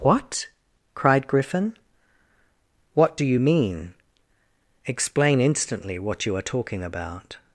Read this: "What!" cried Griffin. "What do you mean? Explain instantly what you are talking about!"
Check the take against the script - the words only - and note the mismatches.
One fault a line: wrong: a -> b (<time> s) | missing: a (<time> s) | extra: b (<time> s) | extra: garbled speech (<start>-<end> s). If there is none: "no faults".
no faults